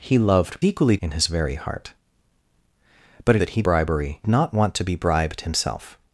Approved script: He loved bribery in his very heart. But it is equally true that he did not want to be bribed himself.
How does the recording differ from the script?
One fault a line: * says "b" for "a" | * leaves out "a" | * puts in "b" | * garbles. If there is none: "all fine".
* says "equally" for "bribery"
* leaves out "is equally true"
* says "bribery" for "did"